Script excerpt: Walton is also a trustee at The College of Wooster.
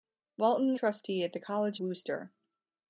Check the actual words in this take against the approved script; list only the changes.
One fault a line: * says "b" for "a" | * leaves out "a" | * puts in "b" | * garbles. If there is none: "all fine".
* leaves out "is also"
* leaves out "of"